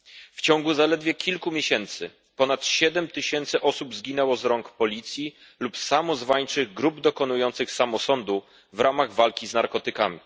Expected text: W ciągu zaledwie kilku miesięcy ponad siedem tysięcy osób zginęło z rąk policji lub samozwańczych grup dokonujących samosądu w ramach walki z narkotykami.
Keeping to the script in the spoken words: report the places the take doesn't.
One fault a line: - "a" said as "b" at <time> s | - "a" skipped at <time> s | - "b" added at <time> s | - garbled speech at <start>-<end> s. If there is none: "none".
none